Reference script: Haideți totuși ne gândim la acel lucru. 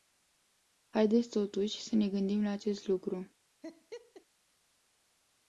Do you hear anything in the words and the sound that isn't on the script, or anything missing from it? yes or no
yes